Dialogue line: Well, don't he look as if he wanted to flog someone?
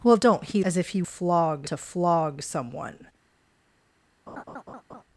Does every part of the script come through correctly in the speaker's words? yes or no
no